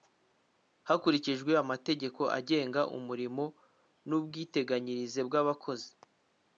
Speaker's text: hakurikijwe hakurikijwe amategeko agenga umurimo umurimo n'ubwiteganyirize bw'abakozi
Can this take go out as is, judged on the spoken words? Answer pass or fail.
fail